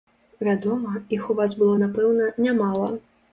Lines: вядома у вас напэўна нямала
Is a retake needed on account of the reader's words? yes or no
yes